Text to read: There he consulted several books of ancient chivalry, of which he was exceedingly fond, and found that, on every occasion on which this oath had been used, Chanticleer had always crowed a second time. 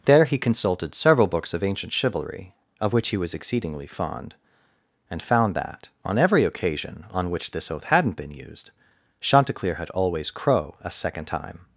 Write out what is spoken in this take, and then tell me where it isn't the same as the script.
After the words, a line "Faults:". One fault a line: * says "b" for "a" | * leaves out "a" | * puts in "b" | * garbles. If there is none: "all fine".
There he consulted several books of ancient chivalry, of which he was exceedingly fond, and found that, on every occasion on which this oath hadn't been used, Chanticleer had always crow a second time.
Faults:
* says "hadn't" for "had"
* says "crow" for "crowed"